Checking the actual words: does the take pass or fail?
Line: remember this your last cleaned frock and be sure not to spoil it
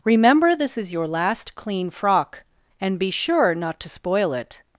fail